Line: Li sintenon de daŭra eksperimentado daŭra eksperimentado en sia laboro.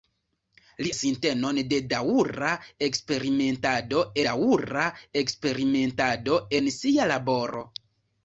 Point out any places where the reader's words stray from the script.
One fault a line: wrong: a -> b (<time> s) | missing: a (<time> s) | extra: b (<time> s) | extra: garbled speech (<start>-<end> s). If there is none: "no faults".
no faults